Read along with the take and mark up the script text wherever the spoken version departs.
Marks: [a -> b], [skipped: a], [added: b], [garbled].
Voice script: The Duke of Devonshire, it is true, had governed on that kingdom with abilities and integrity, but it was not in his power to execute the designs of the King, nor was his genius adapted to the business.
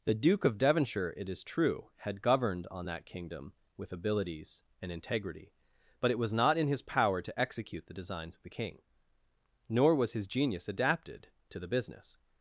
The Duke of Devonshire, it is true, had governed on that kingdom with abilities and integrity, but it was not in his power to execute the designs of the King, nor was his genius adapted to the business.